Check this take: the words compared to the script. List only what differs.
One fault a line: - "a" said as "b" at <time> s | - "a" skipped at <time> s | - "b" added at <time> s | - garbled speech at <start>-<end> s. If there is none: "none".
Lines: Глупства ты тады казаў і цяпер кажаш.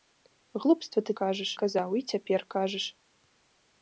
- "тады" said as "кажаш" at 1.2 s